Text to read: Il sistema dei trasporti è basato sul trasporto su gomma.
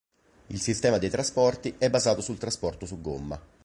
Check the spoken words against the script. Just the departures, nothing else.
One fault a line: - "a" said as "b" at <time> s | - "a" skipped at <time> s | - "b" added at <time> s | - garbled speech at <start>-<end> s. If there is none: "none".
none